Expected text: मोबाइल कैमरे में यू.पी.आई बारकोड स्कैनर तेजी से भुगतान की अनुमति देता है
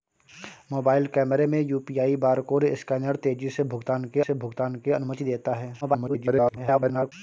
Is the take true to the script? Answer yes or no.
no